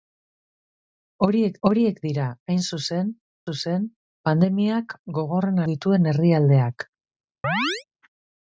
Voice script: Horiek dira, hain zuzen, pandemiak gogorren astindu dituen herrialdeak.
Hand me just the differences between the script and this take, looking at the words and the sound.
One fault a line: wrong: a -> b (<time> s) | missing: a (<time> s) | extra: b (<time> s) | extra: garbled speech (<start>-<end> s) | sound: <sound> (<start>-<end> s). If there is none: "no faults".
extra: horiek (1.7 s)
extra: zuzen (3.5 s)
missing: astindu (5.6 s)
sound: chirp (7.4-7.8 s)